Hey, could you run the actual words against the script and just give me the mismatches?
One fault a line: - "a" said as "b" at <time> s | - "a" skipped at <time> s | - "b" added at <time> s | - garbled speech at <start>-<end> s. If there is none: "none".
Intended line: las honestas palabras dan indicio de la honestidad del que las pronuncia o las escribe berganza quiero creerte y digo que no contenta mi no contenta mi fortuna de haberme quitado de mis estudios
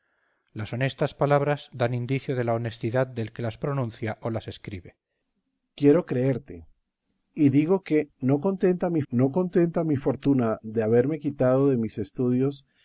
none